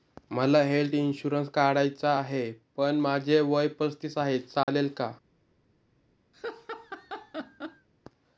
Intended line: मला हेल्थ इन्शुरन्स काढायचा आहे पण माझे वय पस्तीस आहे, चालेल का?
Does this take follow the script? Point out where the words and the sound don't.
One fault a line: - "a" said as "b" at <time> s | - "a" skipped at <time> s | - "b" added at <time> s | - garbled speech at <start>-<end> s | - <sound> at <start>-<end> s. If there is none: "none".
- dropout at 4.6-4.7 s
- laugh at 6.3-7.9 s